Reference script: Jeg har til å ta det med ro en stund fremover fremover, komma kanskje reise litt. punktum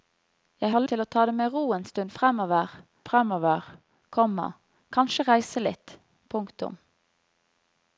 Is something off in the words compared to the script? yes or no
no